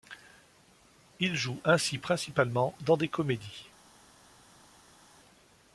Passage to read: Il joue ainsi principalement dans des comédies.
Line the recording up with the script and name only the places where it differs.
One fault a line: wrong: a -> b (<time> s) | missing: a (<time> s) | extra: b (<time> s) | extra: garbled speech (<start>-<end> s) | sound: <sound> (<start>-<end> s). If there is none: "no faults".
no faults